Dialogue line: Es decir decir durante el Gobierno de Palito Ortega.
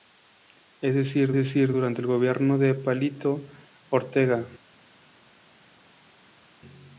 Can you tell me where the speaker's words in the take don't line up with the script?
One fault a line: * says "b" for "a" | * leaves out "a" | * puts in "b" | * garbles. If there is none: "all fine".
all fine